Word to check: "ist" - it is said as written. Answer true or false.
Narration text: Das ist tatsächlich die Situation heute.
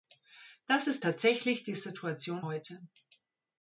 true